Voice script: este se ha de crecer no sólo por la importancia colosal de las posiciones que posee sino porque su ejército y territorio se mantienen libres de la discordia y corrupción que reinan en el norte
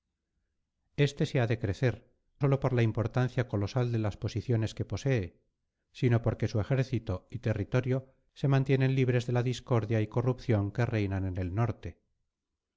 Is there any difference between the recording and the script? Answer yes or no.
yes